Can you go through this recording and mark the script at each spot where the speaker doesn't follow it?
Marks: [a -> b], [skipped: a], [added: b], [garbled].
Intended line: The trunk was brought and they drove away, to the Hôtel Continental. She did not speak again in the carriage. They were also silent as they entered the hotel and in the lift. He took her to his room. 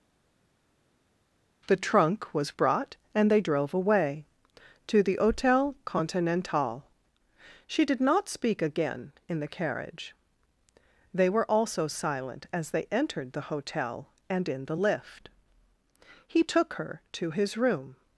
The trunk was brought and they drove away, to the Hôtel Continental. She did not speak again in the carriage. They were also silent as they entered the hotel and in the lift. He took her to his room.